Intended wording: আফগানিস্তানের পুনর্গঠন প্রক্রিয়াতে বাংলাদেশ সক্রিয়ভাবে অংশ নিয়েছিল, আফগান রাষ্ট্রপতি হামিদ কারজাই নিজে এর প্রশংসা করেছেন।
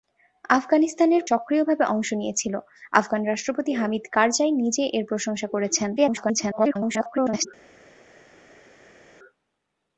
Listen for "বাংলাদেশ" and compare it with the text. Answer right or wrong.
wrong